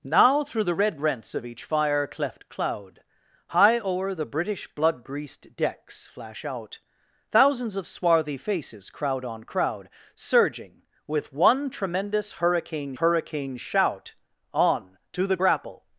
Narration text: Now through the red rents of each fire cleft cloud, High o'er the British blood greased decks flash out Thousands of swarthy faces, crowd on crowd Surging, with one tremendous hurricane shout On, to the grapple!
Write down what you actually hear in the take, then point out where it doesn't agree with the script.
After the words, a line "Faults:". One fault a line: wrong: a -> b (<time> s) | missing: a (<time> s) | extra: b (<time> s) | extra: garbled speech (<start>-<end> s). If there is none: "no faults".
Now through the red rents of each fire cleft cloud, High o'er the British blood greased decks flash out Thousands of swarthy faces, crowd on crowd Surging, with one tremendous hurricane hurricane shout On, to the grapple!
Faults:
extra: hurricane (12.9 s)